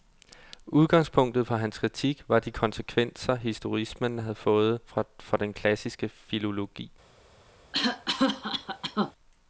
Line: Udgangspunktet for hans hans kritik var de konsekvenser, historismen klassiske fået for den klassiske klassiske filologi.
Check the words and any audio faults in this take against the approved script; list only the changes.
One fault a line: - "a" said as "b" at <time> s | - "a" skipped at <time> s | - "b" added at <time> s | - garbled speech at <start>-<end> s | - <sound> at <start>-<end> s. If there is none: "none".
- "hans" skipped at 1.8 s
- "klassiske" said as "havde" at 4.2 s
- "klassiske" skipped at 6.1 s
- cough at 7.7-9.1 s